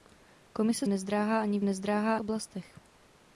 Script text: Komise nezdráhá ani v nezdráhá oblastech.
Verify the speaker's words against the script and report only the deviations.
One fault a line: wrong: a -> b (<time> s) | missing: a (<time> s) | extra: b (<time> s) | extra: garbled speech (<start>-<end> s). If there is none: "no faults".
no faults